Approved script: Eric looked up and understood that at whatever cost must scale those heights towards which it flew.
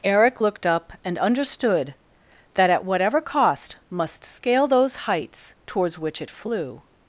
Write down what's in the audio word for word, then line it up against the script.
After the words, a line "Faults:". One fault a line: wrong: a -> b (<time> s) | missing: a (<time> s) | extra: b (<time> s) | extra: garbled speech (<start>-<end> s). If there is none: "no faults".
Eric looked up and understood that at whatever cost must scale those heights towards which it flew.
Faults:
no faults